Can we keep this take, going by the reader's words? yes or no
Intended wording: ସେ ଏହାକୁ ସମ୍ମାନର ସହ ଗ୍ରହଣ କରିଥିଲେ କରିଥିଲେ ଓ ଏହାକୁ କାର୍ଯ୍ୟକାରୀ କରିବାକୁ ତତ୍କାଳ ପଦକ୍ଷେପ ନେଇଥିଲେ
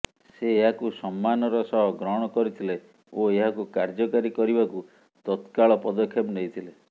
no